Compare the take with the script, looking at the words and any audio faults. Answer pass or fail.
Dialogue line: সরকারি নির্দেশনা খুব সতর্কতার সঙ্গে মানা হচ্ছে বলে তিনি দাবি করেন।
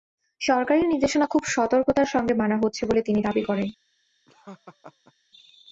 fail